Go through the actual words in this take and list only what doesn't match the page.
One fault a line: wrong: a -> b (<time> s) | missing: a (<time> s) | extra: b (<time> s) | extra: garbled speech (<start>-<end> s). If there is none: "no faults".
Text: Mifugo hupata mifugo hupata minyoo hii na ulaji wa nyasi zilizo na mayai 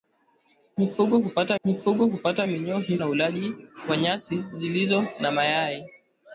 no faults